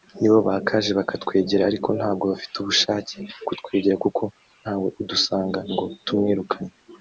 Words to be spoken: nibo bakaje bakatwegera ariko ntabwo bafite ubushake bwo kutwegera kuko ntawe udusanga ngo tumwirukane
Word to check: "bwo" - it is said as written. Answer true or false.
false